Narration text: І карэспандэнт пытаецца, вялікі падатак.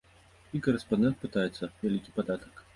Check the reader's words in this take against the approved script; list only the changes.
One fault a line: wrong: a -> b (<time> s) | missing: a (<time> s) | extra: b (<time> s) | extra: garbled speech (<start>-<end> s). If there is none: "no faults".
no faults